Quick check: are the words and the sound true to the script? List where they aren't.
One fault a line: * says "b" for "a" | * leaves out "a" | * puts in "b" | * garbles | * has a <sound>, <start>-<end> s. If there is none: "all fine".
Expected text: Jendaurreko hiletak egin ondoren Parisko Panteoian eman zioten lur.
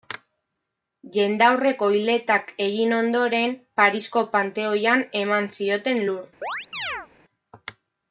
* has a chirp, 6.4-7.1 s